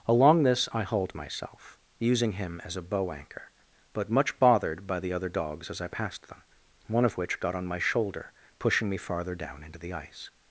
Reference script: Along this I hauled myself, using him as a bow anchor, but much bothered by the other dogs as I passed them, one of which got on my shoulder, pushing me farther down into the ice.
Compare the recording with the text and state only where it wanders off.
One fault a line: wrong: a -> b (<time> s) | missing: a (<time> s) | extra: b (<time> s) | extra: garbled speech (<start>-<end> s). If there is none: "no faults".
no faults